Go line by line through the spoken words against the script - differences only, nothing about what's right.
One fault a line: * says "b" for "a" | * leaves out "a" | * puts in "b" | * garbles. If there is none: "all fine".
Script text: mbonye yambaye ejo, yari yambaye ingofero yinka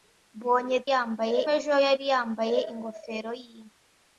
all fine